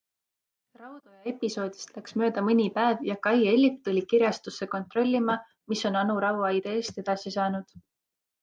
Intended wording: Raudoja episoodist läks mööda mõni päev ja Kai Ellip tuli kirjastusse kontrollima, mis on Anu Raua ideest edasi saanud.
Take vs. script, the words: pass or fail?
pass